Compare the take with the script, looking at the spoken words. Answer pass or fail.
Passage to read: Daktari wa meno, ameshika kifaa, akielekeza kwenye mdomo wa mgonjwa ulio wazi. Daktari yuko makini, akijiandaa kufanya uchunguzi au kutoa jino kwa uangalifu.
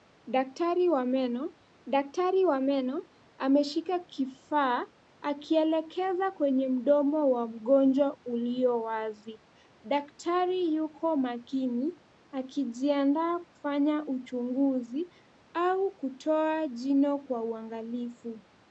fail